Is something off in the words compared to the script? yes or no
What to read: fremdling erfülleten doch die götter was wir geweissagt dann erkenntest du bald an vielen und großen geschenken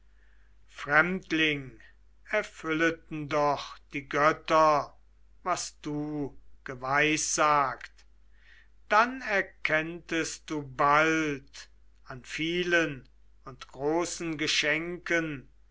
yes